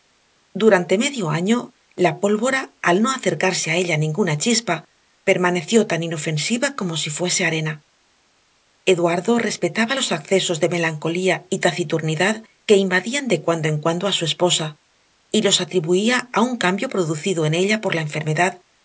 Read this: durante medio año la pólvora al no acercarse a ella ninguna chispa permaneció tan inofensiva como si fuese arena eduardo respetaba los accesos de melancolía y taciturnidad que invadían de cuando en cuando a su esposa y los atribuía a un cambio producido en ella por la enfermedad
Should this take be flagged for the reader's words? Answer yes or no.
no